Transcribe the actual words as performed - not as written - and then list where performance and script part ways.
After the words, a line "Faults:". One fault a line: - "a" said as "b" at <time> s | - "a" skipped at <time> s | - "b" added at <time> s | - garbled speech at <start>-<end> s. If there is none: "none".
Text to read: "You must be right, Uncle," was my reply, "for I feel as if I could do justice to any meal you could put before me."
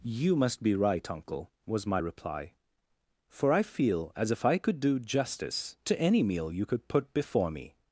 "You must be right, Uncle," was my reply, "for I feel as if I could do justice to any meal you could put before me."
Faults:
none